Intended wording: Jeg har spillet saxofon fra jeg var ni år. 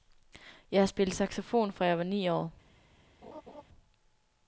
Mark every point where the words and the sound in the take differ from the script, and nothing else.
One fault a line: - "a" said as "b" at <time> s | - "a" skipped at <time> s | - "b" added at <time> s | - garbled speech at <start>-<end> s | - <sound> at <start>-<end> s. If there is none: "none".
- laugh at 3.2-3.6 s